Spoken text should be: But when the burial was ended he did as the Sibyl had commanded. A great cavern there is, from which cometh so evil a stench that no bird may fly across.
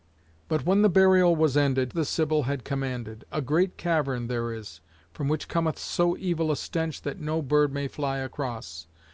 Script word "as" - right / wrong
wrong